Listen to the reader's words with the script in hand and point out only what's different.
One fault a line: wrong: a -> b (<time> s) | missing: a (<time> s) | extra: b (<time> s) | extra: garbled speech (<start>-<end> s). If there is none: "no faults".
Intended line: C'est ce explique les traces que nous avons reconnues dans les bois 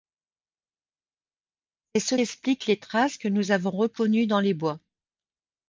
no faults